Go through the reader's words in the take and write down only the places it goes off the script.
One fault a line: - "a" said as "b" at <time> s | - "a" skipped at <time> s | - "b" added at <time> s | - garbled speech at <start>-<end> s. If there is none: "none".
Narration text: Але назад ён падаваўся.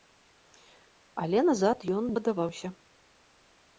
none